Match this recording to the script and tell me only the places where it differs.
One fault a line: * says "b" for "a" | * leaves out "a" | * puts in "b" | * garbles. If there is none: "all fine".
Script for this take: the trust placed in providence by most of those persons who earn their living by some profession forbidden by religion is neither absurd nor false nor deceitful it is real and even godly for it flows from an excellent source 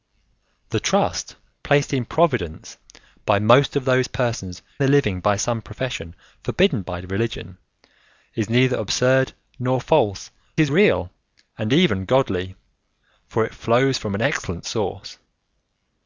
* leaves out "who earn"
* leaves out "nor deceitful it"